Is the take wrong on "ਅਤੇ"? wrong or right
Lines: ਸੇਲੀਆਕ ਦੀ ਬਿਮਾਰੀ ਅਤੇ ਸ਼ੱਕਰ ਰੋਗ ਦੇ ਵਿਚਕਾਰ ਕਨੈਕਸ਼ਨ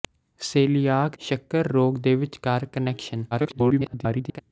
wrong